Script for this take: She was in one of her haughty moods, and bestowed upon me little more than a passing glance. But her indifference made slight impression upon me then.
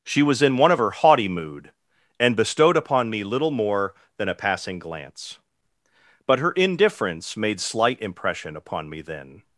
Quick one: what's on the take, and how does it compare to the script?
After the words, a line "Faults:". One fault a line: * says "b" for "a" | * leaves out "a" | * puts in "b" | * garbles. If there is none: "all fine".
She was in one of her haughty mood, and bestowed upon me little more than a passing glance. But her indifference made slight impression upon me then.
Faults:
* says "mood" for "moods"